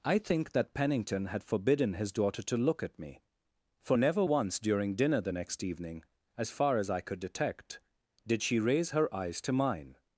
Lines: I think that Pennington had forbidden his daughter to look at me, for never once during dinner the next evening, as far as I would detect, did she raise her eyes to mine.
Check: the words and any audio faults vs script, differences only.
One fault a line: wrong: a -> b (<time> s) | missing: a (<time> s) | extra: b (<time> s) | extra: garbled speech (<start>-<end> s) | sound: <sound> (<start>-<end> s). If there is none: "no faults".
wrong: would -> could (7.0 s)